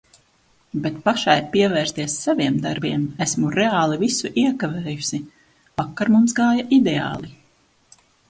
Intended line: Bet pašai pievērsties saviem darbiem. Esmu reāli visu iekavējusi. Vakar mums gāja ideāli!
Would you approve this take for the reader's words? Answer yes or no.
yes